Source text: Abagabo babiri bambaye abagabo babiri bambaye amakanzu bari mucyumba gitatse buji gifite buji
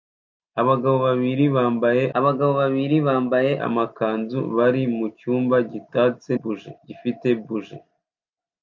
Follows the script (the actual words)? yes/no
yes